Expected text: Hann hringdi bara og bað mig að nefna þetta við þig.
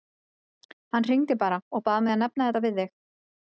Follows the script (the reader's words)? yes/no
yes